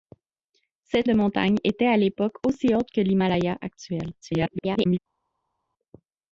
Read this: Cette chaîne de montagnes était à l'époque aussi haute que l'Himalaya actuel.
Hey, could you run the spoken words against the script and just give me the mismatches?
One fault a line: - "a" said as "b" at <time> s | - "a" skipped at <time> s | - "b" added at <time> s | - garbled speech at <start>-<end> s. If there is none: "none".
- "chaîne" skipped at 1.1 s
- garbled speech at 4.2-5.0 s